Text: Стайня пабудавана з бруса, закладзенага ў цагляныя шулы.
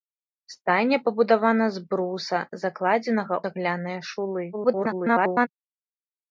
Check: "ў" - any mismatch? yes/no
yes